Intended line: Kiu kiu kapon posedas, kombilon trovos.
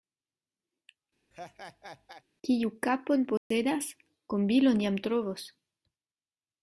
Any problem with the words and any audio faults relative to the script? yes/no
yes